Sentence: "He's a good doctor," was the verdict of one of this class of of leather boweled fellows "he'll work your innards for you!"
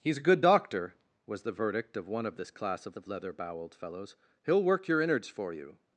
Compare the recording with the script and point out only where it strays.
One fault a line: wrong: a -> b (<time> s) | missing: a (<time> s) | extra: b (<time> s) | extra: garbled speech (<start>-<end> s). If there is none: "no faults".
no faults